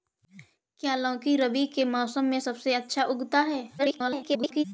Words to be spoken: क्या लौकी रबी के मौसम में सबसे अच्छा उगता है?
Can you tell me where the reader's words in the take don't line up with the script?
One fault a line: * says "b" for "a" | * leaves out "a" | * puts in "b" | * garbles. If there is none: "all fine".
* garbles